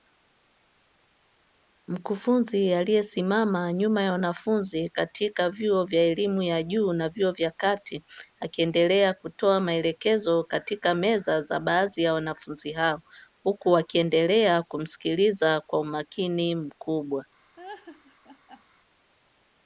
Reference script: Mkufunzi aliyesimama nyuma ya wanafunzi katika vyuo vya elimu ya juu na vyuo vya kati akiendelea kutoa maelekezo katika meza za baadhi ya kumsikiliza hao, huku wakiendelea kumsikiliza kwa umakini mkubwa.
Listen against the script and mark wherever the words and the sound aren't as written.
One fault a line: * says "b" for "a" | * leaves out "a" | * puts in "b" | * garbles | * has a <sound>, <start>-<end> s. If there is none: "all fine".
* says "wanafunzi" for "kumsikiliza"
* has a laugh, 17.6-18.6 s